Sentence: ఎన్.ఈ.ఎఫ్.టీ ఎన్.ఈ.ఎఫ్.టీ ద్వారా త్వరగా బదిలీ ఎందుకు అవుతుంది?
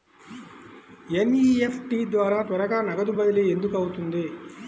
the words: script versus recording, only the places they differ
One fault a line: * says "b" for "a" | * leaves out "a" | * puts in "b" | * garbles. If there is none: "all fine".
* leaves out "ఎన్.ఈ.ఎఫ్.టీ"
* puts in "నగదు"